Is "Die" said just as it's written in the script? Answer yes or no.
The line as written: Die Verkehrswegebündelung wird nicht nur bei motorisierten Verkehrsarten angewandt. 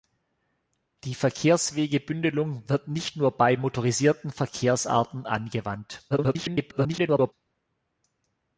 yes